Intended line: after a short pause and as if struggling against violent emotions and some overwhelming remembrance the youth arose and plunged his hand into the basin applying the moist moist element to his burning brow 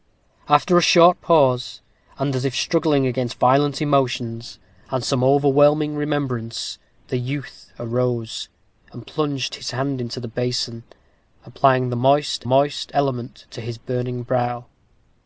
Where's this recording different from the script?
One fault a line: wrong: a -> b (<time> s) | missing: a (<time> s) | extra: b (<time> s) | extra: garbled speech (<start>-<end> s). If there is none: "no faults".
no faults